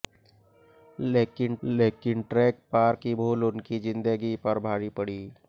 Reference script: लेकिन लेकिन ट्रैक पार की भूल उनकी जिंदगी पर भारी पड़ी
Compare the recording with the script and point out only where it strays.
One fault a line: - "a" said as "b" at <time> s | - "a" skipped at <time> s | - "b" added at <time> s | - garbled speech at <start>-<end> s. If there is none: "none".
none